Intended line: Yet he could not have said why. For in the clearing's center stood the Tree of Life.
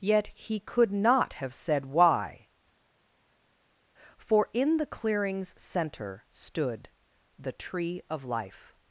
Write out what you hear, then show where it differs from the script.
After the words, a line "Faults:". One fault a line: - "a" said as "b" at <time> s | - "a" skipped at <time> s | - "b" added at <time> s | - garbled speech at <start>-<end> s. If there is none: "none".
Yet he could not have said why. For in the clearing's center stood the Tree of Life.
Faults:
none